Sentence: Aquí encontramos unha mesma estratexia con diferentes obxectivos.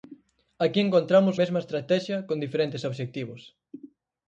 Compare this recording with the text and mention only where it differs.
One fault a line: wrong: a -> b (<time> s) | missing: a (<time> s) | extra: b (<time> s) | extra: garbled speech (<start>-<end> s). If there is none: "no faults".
missing: unha (1.4 s)